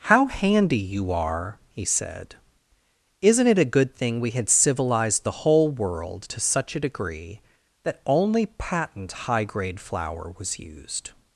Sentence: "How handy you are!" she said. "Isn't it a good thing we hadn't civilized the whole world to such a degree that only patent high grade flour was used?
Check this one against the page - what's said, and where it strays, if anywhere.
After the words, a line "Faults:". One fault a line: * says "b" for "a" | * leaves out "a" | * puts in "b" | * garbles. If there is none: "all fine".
"How handy you are!" he said. "Isn't it a good thing we had civilized the whole world to such a degree that only patent high grade flour was used?
Faults:
* says "he" for "she"
* says "had" for "hadn't"